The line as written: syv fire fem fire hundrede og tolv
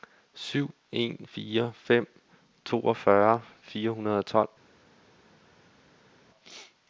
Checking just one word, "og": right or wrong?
right